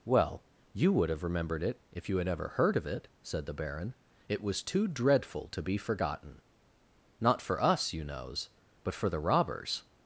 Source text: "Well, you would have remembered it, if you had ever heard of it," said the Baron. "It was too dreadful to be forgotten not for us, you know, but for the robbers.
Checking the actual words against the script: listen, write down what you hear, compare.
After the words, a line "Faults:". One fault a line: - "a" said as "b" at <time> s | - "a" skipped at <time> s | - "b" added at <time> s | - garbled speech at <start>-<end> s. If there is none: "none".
"Well, you would have remembered it, if you had ever heard of it," said the Baron. "It was too dreadful to be forgotten not for us, you knows, but for the robbers.
Faults:
- "know" said as "knows" at 8.0 s